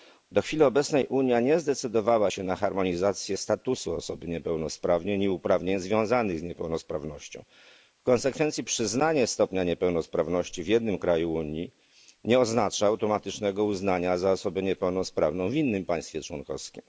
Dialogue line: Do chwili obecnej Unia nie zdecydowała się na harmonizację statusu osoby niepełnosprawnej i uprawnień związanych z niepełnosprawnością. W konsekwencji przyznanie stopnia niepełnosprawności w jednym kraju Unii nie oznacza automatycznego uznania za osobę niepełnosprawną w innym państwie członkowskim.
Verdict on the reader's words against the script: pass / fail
pass